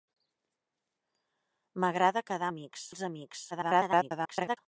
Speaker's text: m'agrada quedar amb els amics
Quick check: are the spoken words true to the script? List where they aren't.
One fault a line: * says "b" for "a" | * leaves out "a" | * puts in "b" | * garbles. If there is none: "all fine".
* says "amics" for "amb"
* garbles